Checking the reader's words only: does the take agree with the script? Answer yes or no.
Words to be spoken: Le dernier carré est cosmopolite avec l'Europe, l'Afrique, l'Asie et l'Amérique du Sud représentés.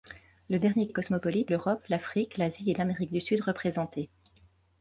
no